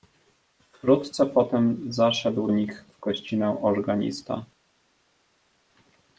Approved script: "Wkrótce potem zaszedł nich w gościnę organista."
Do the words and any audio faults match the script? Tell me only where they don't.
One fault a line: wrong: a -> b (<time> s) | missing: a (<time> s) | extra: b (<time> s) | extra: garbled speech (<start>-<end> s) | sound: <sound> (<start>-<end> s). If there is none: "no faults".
no faults